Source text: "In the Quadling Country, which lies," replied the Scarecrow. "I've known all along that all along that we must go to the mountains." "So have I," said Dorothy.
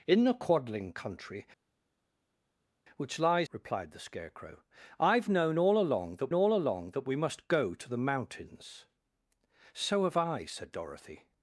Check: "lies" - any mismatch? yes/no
no